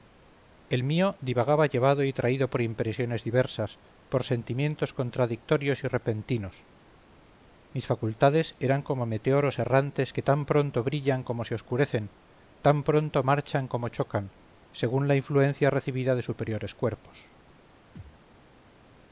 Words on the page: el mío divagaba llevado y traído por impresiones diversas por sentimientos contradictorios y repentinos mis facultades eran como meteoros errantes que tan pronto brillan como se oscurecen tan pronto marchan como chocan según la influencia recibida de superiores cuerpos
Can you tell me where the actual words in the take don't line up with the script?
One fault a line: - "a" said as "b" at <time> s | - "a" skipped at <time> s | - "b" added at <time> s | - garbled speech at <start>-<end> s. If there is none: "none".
none